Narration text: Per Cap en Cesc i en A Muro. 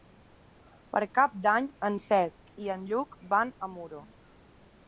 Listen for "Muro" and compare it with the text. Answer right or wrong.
right